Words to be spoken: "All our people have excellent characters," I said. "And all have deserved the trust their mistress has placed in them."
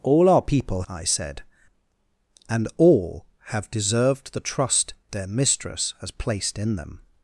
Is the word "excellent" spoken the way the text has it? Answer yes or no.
no